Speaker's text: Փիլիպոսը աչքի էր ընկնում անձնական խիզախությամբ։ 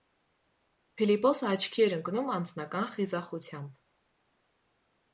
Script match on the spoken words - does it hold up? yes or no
yes